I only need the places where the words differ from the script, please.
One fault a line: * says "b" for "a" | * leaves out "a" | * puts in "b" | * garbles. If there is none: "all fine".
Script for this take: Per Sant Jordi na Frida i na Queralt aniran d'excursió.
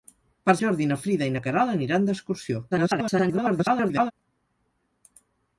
* leaves out "Sant"
* garbles